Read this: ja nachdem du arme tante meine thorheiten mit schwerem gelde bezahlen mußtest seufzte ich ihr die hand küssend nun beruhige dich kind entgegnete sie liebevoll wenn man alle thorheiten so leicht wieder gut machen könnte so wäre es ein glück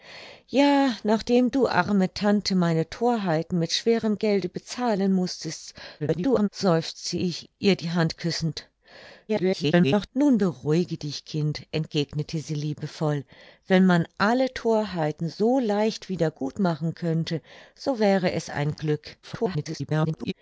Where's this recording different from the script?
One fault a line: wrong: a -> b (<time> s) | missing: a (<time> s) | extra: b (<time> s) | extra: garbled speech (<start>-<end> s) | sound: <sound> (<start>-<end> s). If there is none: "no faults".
extra: garbled speech (6.0-6.5 s)
extra: garbled speech (9.3-10.1 s)
extra: garbled speech (19.2-20.3 s)